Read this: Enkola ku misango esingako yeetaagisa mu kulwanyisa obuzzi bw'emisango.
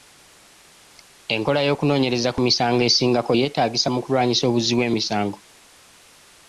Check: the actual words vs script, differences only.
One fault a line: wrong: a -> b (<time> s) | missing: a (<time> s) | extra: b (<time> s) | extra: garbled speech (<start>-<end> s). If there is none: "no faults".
extra: y'okunoonyereza (1.7 s)